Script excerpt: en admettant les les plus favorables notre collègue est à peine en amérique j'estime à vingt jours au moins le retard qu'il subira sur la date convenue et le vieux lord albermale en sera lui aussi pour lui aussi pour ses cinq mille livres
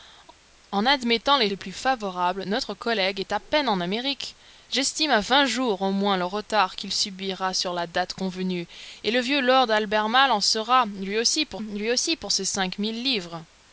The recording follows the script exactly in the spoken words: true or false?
true